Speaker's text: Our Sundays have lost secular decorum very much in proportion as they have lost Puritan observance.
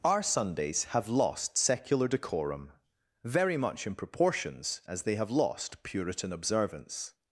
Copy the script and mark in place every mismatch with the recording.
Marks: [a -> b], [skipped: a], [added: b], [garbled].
Our Sundays have lost secular decorum very much in [proportion -> proportions] as they have lost Puritan observance.